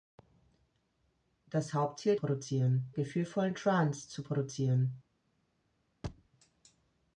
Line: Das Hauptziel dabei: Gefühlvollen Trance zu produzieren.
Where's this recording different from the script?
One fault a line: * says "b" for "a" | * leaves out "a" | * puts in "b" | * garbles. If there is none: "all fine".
* says "produzieren" for "dabei"